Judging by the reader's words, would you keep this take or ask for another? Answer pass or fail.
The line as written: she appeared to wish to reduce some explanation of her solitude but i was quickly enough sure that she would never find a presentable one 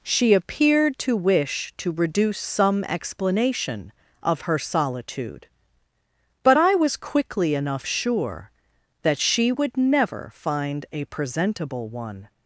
pass